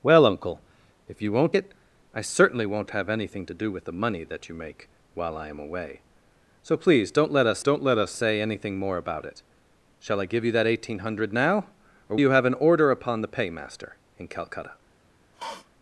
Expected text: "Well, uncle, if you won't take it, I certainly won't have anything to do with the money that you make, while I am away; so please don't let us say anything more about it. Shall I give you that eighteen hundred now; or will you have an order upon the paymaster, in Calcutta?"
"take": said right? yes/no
no